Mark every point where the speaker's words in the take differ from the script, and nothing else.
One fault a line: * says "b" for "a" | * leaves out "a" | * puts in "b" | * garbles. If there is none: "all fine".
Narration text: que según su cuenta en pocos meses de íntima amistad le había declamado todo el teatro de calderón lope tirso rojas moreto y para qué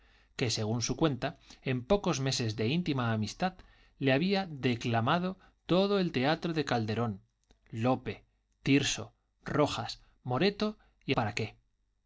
all fine